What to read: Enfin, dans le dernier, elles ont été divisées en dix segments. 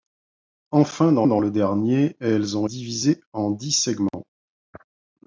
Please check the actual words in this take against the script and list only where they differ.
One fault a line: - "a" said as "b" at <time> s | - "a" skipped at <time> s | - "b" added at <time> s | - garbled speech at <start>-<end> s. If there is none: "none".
- "dans" added at 1.2 s
- "été" skipped at 2.7 s